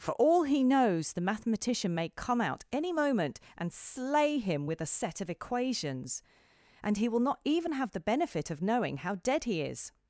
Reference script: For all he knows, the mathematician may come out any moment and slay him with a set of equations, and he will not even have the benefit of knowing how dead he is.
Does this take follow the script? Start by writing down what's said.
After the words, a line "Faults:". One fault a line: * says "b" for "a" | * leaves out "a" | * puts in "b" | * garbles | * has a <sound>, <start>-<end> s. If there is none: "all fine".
For all he knows, the mathematician may come out any moment and slay him with a set of equations, and he will not even have the benefit of knowing how dead he is.
Faults:
all fine